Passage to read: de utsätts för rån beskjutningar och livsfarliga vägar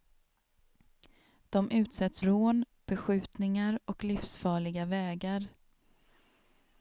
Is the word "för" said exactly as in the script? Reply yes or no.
no